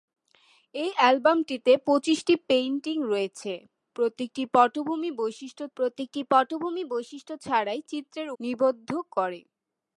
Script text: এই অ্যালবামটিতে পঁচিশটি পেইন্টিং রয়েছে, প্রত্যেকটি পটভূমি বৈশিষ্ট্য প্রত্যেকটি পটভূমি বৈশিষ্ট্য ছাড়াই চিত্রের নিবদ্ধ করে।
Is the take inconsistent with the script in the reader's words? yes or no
no